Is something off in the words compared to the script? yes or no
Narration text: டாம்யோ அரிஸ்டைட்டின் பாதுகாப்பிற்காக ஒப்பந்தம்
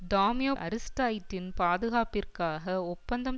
no